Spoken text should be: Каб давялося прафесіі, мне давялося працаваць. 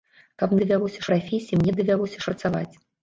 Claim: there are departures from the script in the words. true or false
false